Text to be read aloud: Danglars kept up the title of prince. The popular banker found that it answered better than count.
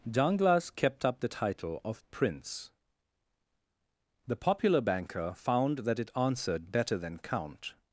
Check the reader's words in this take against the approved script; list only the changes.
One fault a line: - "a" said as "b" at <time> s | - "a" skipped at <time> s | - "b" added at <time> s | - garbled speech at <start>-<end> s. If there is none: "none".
none